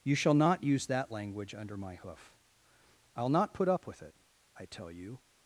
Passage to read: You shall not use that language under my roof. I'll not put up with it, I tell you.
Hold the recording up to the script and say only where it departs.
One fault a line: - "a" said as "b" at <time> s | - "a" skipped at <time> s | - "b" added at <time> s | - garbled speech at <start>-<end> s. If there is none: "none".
- "roof" said as "hoof" at 1.9 s